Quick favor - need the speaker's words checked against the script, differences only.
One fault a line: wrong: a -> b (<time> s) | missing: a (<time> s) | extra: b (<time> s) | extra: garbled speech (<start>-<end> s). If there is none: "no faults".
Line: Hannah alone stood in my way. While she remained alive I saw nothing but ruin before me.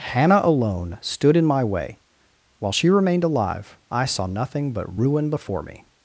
no faults